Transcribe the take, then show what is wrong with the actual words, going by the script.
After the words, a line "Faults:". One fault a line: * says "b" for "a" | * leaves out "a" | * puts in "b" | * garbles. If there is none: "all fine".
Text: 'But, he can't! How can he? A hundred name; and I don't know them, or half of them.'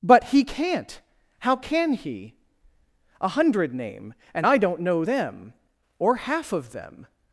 'But, he can't! How can he? A hundred name; and I don't know them, or half of them.'
Faults:
all fine